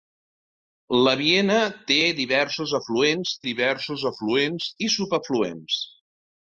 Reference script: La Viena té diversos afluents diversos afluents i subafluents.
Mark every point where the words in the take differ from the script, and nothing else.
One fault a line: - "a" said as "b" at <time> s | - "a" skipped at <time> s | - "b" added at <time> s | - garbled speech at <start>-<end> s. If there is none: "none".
none